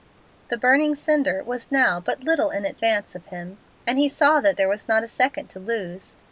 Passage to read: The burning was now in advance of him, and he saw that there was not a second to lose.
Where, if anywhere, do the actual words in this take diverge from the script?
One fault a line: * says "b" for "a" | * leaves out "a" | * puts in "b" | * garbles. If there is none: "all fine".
* puts in "cinder"
* puts in "but little"